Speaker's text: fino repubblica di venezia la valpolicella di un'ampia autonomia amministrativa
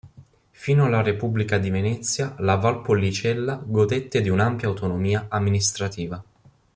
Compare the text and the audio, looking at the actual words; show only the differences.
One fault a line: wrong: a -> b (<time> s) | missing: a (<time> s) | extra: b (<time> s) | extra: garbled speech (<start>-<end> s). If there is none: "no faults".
extra: alla (0.8 s)
extra: godette (3.6 s)